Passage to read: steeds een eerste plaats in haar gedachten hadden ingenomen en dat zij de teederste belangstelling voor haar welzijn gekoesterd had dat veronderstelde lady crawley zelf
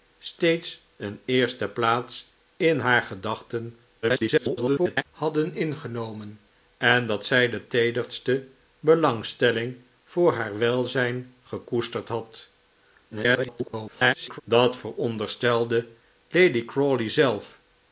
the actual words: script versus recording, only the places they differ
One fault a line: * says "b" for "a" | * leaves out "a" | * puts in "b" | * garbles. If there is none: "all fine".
* garbles
* garbles